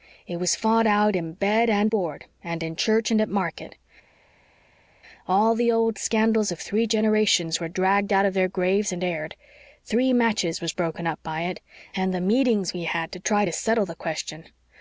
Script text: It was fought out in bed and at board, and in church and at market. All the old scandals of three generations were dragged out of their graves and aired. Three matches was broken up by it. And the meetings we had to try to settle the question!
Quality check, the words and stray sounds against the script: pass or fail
fail